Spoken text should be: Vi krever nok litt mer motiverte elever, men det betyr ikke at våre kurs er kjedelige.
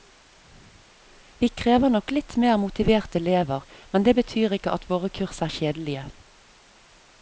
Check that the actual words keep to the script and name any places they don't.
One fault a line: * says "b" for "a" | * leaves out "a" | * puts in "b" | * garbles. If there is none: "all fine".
all fine